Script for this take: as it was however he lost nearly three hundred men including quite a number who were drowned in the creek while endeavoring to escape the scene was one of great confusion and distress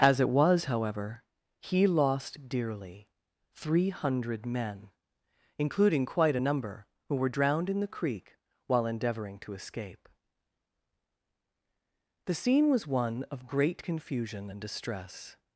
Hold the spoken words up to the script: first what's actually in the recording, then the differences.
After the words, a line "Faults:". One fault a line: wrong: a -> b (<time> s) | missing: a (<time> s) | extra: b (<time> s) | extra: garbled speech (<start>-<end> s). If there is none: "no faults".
as it was however he lost dearly three hundred men including quite a number who were drowned in the creek while endeavoring to escape the scene was one of great confusion and distress
Faults:
wrong: nearly -> dearly (2.5 s)